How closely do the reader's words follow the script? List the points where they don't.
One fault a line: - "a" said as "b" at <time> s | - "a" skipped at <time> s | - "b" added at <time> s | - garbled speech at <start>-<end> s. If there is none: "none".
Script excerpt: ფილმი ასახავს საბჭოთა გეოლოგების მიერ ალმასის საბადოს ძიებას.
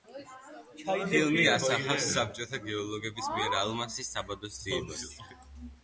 none